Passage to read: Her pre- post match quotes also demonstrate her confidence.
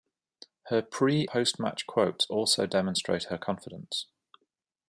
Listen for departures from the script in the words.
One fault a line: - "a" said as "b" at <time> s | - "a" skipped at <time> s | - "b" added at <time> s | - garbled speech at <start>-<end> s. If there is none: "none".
none